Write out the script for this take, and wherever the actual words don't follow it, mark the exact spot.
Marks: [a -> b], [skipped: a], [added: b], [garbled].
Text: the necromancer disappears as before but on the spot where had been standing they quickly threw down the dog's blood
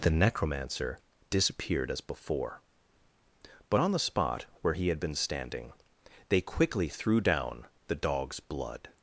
the necromancer [disappears -> disappeared] as before but on the spot where [added: he] had been standing they quickly threw down the dog's blood